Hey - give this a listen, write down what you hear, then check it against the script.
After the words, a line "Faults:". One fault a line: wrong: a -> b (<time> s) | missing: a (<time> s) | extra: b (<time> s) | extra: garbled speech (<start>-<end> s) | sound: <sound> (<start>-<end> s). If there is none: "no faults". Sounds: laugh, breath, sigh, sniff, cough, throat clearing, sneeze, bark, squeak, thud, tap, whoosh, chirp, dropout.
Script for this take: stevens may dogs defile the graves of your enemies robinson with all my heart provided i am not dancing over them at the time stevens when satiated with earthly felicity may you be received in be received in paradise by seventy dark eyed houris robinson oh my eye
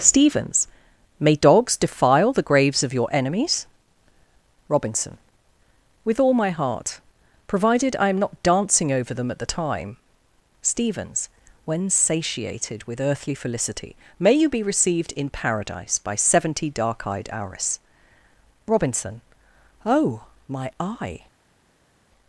stevens may dogs defile the graves of your enemies robinson with all my heart provided i am not dancing over them at the time stevens when satiated with earthly felicity may you be received in paradise by seventy dark eyed houris robinson oh my eye
Faults:
missing: be received in (15.3 s)